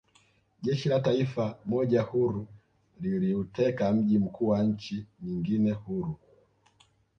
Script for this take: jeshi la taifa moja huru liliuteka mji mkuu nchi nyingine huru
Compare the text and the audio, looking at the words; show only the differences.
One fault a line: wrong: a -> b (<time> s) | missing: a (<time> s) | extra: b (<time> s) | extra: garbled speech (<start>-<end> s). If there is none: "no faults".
extra: wa (4.5 s)